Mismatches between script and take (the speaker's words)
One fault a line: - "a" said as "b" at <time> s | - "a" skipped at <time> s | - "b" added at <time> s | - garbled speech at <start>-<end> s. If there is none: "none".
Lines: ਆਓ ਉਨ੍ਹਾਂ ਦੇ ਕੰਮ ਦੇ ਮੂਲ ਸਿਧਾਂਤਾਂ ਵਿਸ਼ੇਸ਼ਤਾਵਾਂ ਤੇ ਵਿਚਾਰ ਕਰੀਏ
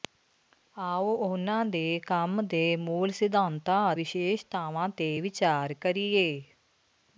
none